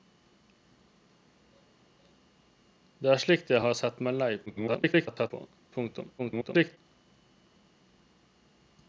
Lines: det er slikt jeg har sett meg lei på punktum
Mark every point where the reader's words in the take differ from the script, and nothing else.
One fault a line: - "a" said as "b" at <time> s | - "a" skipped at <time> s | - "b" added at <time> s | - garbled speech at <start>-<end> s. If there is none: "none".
- garbled speech at 4.5-5.3 s
- garbled speech at 6.2-6.8 s